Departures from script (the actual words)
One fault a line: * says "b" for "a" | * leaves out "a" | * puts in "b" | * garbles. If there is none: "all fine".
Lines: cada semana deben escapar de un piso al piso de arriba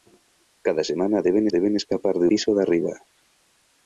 * puts in "deben"
* leaves out "un piso al"